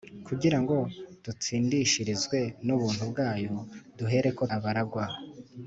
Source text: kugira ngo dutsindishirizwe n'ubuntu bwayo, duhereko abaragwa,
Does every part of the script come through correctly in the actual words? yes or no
yes